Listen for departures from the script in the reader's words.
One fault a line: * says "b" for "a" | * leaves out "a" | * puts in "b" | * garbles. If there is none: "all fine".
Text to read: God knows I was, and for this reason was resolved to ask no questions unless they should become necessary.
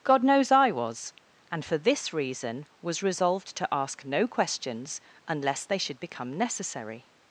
all fine